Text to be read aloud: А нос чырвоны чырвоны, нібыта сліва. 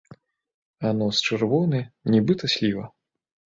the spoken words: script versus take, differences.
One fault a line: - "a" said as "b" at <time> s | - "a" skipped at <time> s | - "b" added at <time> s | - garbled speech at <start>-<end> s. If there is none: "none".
- "чырвоны" skipped at 1.8 s